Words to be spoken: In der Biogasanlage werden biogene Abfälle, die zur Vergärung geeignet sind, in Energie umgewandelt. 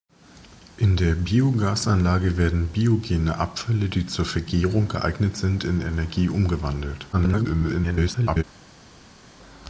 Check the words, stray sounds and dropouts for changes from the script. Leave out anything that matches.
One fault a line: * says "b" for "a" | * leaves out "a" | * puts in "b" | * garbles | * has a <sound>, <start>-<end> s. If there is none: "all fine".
* garbles